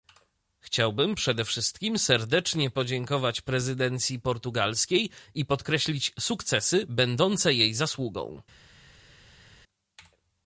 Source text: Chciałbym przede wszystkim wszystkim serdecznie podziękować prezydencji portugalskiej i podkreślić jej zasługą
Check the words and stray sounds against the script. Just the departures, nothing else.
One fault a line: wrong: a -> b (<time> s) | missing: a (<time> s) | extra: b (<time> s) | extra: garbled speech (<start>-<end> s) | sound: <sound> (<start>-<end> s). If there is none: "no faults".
missing: wszystkim (2.0 s)
extra: sukcesy będące (6.2 s)